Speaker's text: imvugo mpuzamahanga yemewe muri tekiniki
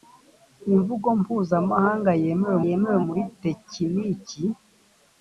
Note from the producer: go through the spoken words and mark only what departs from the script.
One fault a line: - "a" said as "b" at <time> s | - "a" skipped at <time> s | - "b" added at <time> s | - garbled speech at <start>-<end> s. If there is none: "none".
- "yemewe" added at 2.7 s